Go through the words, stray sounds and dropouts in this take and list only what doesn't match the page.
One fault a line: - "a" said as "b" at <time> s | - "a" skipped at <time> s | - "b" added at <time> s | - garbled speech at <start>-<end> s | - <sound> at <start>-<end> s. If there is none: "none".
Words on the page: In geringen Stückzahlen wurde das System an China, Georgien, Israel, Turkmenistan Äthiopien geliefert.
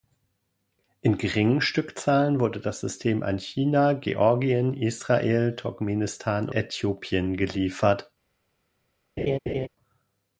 - laugh at 9.2-9.7 s